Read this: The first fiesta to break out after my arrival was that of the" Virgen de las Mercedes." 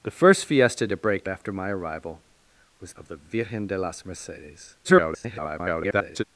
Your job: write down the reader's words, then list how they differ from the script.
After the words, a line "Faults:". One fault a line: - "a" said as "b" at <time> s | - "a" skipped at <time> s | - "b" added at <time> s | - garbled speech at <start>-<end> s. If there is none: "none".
The first fiesta to break after my arrival was of the" Virgen de las Mercedes." [garbled]
Faults:
- "out" skipped at 1.3 s
- "that" skipped at 2.9 s
- garbled speech at 4.8-6.2 s